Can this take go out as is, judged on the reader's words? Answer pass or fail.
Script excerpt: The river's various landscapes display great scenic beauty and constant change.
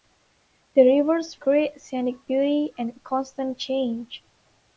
fail